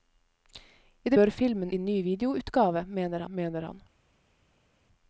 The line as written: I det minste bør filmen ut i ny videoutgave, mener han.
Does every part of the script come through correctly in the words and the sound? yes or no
no